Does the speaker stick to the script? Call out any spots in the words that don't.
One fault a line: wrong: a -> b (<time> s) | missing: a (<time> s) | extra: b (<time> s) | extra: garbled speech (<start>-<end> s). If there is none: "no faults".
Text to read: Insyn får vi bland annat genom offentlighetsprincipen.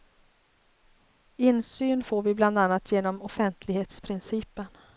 no faults